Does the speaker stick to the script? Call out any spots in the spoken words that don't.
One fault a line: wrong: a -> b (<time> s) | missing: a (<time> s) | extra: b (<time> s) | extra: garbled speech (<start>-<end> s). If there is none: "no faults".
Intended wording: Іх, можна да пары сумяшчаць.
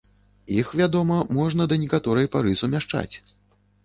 extra: вядома (0.8 s)
extra: некаторай (1.8 s)